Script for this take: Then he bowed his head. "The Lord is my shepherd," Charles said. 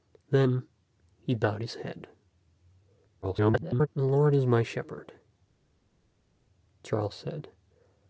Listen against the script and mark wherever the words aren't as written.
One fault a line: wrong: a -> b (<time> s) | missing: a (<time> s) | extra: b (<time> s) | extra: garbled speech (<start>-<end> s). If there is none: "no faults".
extra: garbled speech (3.2-3.9 s)